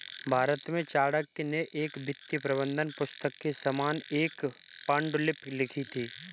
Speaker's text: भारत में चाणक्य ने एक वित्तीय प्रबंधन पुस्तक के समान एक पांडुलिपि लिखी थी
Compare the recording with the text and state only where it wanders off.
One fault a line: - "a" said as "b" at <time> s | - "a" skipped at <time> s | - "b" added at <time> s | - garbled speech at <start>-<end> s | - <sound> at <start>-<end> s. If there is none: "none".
none